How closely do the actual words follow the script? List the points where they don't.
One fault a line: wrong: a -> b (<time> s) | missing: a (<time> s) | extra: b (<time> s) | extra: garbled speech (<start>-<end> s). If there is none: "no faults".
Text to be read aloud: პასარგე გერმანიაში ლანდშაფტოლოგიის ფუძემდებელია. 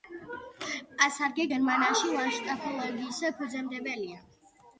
no faults